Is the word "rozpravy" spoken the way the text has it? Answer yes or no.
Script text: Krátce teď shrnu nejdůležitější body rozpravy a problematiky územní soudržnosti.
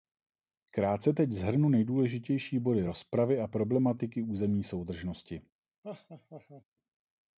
yes